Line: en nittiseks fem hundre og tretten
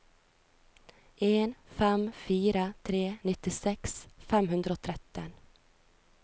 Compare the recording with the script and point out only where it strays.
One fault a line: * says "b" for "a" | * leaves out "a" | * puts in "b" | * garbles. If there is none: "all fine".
* puts in "fem fire tre"